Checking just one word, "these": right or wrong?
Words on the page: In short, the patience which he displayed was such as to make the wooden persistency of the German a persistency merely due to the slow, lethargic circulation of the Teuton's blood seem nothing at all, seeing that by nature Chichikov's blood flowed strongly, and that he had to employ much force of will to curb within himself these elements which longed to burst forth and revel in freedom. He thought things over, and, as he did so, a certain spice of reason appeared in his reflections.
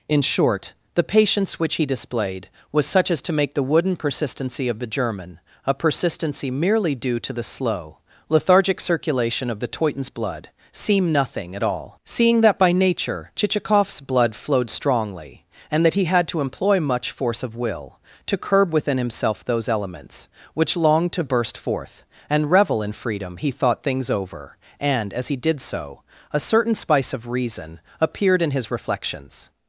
wrong